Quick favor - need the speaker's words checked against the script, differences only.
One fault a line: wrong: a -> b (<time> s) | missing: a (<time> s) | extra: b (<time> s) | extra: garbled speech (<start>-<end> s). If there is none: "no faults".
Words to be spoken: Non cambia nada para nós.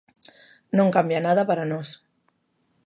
no faults